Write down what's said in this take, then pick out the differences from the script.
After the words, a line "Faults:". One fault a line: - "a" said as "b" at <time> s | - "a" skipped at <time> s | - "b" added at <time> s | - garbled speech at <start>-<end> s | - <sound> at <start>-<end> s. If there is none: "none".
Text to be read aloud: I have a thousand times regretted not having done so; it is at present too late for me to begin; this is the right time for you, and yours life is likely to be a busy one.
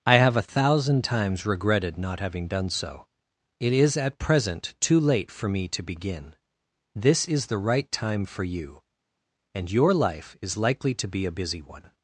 I have a thousand times regretted not having done so; it is at present too late for me to begin; this is the right time for you, and your life is likely to be a busy one.
Faults:
- "yours" said as "your" at 9.7 s